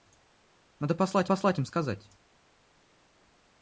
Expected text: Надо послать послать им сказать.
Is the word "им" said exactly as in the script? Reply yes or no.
yes